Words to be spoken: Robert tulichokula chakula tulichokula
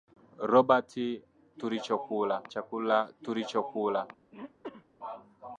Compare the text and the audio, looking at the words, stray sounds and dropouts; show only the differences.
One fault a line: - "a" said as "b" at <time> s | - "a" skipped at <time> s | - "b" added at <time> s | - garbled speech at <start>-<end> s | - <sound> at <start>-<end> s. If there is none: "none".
- throat clearing at 4.3-4.9 s